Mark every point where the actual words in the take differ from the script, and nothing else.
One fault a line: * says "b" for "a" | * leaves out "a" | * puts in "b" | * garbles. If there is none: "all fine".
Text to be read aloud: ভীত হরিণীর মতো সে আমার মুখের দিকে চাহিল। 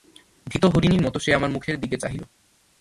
all fine